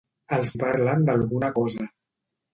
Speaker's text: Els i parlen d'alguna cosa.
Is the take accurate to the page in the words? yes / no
yes